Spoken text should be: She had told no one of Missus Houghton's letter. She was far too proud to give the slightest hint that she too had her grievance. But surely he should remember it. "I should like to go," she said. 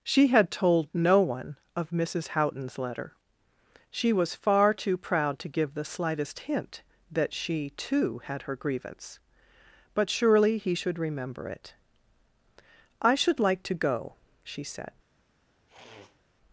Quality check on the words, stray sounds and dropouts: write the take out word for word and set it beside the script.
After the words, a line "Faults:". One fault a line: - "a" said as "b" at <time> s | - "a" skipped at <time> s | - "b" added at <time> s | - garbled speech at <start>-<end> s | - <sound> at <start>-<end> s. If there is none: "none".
She had told no one of Missus Houghton's letter. She was far too proud to give the slightest hint that she too had her grievance. But surely he should remember it. "I should like to go," she said.
Faults:
- sniff at 15.7-16.2 s